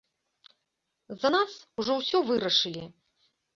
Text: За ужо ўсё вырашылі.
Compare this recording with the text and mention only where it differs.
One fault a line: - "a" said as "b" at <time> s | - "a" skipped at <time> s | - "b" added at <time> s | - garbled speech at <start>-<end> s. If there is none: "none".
- "нас" added at 1.3 s